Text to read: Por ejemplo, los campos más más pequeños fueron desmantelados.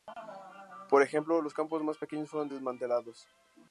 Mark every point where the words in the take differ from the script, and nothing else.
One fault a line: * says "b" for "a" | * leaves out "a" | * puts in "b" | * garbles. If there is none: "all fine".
* leaves out "más"